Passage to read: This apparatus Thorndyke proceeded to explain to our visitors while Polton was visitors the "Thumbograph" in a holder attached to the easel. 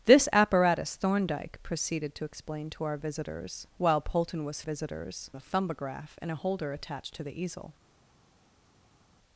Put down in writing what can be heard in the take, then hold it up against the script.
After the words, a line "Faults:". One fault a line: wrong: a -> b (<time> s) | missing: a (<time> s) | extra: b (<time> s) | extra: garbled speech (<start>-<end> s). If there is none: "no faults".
This apparatus Thorndyke proceeded to explain to our visitors while Polton was visitors the "Thumbograph" in a holder attached to the easel.
Faults:
no faults